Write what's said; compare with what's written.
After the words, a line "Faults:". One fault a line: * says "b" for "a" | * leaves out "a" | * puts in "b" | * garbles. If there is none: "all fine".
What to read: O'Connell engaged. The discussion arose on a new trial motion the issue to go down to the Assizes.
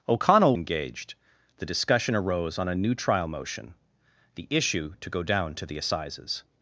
O'Connell engaged. The discussion arose on a new trial motion the issue to go down to the Assizes.
Faults:
all fine